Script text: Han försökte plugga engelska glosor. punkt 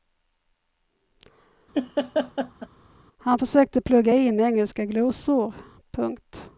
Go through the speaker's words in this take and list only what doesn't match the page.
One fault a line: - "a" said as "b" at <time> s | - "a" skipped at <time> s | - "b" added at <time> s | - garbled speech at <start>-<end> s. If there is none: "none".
- "in" added at 4.1 s